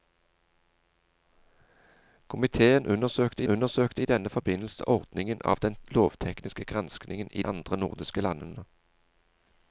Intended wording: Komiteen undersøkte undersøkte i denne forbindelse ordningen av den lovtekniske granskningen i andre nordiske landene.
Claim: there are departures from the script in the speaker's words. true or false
false